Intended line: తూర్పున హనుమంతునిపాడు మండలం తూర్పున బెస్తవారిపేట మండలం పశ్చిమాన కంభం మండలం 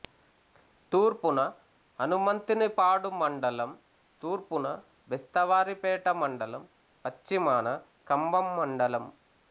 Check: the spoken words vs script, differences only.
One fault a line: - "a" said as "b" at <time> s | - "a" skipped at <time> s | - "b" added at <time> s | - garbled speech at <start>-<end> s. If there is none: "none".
none